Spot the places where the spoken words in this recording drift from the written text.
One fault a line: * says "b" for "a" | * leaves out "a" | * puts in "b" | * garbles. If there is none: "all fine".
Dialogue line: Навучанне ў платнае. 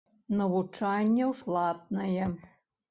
all fine